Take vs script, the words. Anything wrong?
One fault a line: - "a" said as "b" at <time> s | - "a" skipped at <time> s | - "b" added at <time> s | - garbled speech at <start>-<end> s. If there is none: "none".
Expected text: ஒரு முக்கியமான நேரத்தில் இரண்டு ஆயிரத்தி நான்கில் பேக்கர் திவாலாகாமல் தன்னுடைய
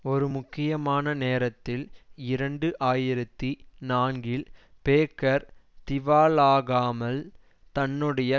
none